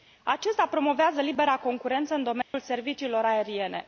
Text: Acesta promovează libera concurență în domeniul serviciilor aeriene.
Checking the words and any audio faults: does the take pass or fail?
fail